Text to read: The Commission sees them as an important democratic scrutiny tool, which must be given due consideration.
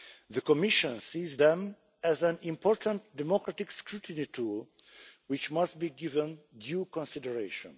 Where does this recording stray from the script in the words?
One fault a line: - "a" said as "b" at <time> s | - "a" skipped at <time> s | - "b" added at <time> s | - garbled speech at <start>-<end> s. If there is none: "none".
none